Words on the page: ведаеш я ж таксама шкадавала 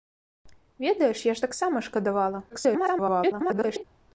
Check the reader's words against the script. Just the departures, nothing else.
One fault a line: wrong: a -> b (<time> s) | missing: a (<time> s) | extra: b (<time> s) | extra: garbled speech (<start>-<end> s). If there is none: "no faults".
extra: garbled speech (2.5-3.8 s)